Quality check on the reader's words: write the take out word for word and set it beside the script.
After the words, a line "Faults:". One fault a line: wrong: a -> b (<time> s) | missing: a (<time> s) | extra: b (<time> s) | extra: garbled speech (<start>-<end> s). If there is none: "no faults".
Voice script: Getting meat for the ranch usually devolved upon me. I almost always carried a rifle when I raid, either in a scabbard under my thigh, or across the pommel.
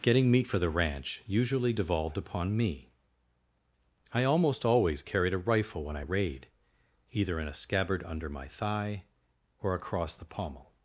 Getting meat for the ranch usually devolved upon me. I almost always carried a rifle when I raid, either in a scabbard under my thigh, or across the pommel.
Faults:
no faults